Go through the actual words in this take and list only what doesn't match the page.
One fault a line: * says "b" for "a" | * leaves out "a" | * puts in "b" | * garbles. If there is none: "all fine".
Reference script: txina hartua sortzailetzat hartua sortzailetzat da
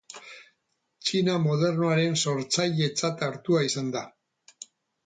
* says "modernoaren" for "hartua"
* says "izan" for "sortzailetzat"